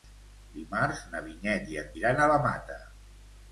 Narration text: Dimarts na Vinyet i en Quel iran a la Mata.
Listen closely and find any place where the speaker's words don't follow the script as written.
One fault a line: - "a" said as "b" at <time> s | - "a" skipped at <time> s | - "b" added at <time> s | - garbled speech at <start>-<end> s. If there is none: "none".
- "Quel" skipped at 1.9 s